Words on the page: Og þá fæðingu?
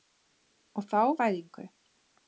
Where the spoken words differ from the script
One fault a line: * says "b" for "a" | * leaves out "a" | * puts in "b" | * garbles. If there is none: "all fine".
all fine